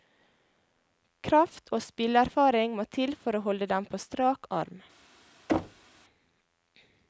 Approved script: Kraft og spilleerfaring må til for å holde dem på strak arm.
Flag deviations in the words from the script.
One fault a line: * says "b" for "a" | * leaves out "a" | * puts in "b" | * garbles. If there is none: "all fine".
all fine